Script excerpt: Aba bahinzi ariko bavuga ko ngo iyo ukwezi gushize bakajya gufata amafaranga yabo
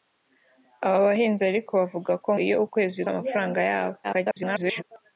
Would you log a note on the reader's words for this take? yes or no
yes